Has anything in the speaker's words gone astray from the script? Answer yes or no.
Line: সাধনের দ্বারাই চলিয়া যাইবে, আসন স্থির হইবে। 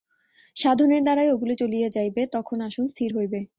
yes